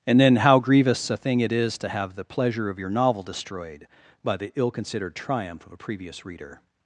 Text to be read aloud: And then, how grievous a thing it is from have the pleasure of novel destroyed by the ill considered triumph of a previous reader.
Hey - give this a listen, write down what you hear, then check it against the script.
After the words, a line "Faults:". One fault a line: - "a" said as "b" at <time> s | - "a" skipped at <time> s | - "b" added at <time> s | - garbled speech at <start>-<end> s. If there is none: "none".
And then, how grievous a thing it is to have the pleasure of your novel destroyed by the ill considered triumph of a previous reader.
Faults:
- "from" said as "to" at 1.8 s
- "your" added at 2.8 s